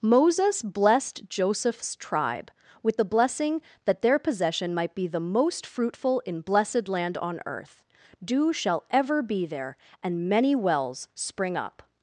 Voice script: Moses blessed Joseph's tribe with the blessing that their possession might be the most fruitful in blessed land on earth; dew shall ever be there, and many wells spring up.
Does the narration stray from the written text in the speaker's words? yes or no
no